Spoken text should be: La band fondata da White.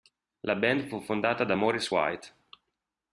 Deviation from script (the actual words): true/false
true